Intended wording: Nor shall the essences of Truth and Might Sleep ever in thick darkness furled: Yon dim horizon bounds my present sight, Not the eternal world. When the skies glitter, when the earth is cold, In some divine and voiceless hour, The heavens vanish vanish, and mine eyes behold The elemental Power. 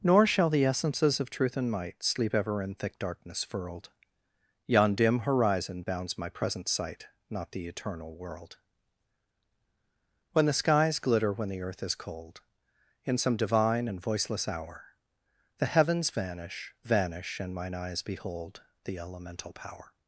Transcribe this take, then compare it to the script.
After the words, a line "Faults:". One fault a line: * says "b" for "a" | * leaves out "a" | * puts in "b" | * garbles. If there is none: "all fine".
Nor shall the essences of Truth and Might Sleep ever in thick darkness furled: Yon dim horizon bounds my present sight, Not the eternal world. When the skies glitter, when the earth is cold, In some divine and voiceless hour, The heavens vanish vanish, and mine eyes behold The elemental Power.
Faults:
all fine